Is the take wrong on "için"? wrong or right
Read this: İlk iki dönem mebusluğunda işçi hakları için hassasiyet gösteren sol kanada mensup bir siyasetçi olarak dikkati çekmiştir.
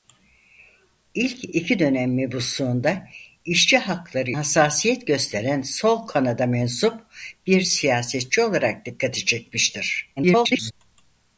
wrong